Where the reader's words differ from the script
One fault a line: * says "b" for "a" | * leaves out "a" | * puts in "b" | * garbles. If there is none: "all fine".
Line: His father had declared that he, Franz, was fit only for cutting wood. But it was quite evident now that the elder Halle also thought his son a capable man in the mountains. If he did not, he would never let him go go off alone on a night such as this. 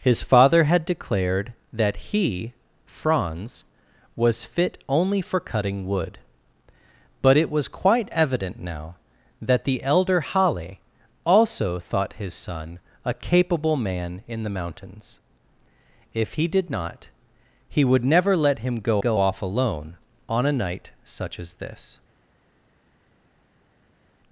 all fine